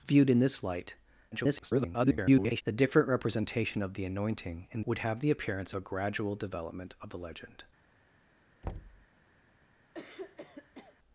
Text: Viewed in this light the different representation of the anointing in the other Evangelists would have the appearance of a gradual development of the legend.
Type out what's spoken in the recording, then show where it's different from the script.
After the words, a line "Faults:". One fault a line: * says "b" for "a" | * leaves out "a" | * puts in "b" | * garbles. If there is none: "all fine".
Viewed in this light [garbled] the different representation of the anointing in would have the appearance a gradual development of the legend.
Faults:
* garbles
* leaves out "the other Evangelists"
* leaves out "of"